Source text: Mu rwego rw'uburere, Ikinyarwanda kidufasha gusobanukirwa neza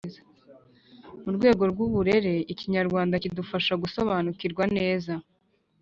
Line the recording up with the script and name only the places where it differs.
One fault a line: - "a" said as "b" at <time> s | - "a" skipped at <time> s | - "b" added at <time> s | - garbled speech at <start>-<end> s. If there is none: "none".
none